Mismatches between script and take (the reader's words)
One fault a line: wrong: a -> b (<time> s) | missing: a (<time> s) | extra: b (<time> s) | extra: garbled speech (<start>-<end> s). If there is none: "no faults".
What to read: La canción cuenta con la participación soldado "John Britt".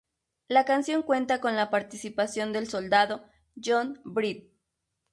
extra: del (2.5 s)